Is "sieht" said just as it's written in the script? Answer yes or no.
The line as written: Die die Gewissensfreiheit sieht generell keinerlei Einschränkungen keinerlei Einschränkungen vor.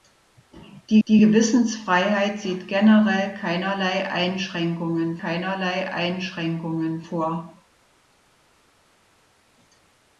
yes